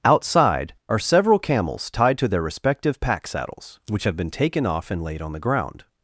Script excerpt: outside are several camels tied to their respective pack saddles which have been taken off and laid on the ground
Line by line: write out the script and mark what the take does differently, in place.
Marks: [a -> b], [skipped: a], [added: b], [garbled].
outside are several camels tied to their respective pack saddles which have been taken off and laid on the ground